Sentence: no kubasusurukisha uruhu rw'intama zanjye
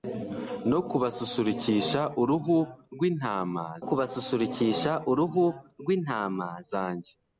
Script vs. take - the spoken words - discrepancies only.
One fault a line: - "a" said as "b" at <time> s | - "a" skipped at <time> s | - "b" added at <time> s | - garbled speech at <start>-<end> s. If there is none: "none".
- "kubasusurukisha uruhu rw'intama" added at 3.9 s